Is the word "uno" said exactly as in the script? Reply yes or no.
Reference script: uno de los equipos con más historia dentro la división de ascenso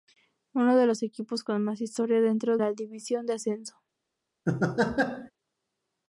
yes